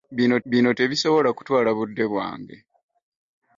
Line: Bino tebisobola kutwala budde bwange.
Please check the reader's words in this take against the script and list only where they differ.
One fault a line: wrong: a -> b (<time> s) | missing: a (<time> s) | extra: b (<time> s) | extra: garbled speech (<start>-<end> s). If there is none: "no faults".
extra: bino (0.5 s)